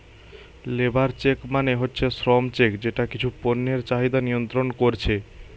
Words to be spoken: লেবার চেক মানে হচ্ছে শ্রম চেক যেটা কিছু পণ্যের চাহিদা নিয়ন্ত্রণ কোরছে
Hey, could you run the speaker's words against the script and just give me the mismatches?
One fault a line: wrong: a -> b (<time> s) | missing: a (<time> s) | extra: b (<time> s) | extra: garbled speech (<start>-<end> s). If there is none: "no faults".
no faults